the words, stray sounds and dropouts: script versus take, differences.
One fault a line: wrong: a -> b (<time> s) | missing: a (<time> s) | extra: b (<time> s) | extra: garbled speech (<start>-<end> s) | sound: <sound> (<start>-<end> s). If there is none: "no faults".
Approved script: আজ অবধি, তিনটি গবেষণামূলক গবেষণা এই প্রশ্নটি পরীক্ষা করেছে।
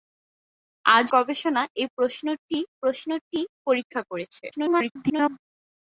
missing: অবধি তিনটি গবেষণামূলক (1.1 s)
extra: প্রশ্নটি (2.8 s)
extra: garbled speech (4.5-5.4 s)